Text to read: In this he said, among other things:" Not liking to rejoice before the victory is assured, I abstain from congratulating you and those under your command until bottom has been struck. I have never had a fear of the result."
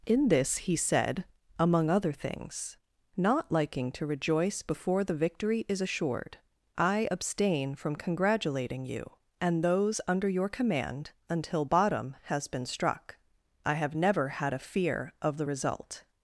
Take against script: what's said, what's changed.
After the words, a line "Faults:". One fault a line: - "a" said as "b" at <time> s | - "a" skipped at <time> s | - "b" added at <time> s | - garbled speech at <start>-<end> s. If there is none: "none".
In this he said, among other things:" Not liking to rejoice before the victory is assured, I abstain from congratulating you and those under your command until bottom has been struck. I have never had a fear of the result."
Faults:
none